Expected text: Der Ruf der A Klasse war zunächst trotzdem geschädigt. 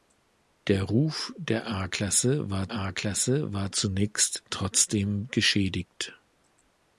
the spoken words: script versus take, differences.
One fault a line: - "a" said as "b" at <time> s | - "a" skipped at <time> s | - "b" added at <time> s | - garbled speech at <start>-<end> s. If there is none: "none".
- "A Klasse war" added at 2.7 s